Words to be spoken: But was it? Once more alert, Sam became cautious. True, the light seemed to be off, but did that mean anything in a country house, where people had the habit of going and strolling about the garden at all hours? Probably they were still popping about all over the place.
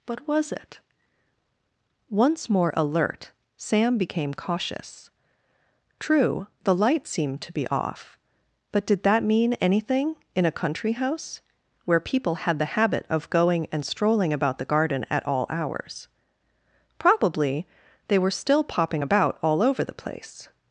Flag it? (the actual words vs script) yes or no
no